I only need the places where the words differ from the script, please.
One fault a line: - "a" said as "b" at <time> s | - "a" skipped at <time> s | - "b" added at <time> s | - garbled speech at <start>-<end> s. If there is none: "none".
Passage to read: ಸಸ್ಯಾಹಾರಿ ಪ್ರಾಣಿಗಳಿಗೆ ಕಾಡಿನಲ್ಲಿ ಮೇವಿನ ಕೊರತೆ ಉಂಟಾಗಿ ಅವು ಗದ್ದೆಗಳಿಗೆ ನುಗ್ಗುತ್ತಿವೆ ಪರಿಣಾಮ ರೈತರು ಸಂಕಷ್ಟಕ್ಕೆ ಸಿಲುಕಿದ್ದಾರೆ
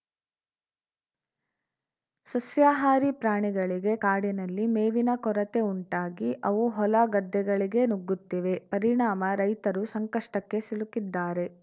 - "ಹೊಲ" added at 6.8 s